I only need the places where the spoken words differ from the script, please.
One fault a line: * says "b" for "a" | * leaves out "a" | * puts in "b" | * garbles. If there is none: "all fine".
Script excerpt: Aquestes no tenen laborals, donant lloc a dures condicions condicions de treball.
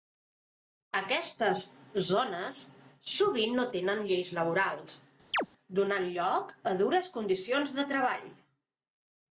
* puts in "zones sovint"
* puts in "lleis"
* leaves out "condicions"